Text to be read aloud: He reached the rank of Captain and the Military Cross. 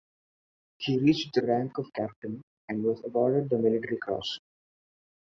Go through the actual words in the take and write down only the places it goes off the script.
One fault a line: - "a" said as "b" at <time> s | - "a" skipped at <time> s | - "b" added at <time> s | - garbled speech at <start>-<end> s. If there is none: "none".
- "was awarded" added at 2.8 s